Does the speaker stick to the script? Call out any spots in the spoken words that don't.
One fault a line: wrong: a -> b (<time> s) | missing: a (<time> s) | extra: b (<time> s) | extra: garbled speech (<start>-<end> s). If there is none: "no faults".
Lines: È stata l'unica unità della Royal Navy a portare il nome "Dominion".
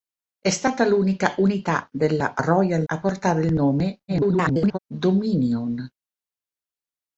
missing: Navy (2.9 s)
extra: garbled speech (4.1-4.8 s)